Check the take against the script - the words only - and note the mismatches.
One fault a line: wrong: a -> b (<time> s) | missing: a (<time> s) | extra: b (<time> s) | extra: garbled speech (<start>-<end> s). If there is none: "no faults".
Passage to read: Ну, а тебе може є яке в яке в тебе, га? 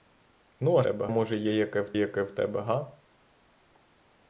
no faults